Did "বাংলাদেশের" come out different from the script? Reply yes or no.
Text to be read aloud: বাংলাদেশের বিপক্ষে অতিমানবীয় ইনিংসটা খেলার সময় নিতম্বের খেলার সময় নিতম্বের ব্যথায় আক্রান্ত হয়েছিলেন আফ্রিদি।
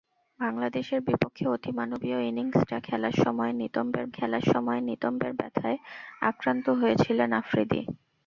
no